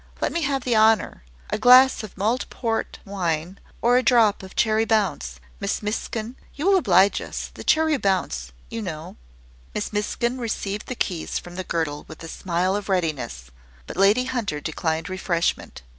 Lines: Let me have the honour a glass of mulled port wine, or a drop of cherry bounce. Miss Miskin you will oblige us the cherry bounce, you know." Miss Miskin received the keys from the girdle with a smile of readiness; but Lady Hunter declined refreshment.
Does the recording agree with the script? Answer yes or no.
yes